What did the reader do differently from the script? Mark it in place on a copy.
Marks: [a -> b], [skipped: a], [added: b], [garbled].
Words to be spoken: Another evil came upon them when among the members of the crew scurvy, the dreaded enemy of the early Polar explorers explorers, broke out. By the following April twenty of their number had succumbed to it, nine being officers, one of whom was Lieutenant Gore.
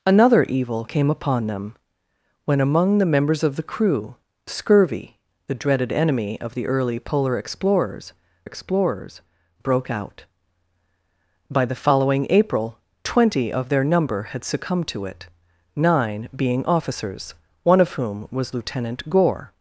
Another evil came upon them when among the members of the crew scurvy, the dreaded enemy of the early Polar explorers explorers, broke out. By the following April twenty of their number had succumbed to it, nine being officers, one of whom was Lieutenant Gore.